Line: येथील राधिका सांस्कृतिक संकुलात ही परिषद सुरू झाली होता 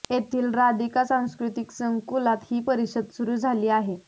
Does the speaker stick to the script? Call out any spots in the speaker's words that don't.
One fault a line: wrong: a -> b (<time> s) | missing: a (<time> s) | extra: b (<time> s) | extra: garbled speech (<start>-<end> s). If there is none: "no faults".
wrong: होता -> आहे (3.7 s)